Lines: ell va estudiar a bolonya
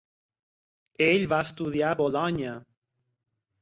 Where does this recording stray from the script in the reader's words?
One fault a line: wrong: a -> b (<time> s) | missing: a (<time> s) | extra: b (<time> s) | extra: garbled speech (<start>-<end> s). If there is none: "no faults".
no faults